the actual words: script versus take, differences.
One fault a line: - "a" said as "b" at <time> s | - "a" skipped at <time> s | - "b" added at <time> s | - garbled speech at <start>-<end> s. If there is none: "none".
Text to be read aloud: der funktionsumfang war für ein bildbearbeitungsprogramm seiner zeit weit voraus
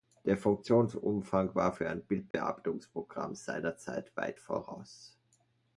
none